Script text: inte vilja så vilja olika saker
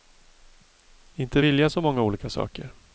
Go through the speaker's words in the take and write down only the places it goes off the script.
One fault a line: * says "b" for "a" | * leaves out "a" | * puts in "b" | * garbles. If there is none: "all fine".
* says "många" for "vilja"